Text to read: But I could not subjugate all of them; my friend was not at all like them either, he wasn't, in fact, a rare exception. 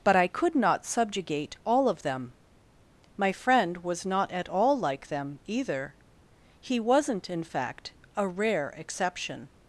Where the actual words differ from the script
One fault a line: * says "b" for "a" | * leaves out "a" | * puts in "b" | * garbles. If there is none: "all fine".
all fine